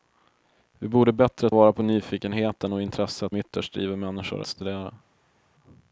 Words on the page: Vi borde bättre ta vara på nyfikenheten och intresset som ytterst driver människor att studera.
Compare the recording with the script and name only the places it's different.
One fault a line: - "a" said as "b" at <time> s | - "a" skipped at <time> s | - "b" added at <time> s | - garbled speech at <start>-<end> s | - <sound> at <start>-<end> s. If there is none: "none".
- "ta" skipped at 1.5 s
- "som" skipped at 3.3 s
- "att" skipped at 4.4 s